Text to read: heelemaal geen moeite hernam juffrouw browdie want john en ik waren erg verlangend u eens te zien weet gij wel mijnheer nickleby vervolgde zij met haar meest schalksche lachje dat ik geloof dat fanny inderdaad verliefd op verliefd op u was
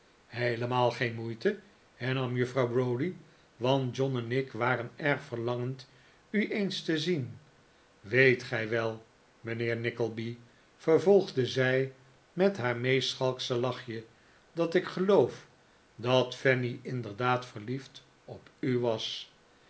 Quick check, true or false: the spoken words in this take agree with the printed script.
false